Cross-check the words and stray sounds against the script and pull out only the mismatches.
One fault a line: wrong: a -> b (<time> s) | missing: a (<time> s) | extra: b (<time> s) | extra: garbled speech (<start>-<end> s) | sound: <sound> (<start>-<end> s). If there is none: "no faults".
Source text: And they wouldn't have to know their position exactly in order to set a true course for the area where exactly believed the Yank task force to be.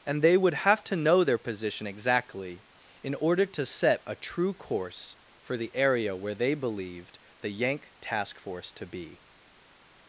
wrong: wouldn't -> would (0.4 s)
wrong: exactly -> they (6.3 s)